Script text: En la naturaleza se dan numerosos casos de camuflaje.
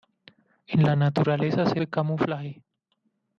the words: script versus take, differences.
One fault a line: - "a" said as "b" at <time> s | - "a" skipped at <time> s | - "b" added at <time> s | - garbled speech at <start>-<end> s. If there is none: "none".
- "dan numerosos casos" skipped at 1.8 s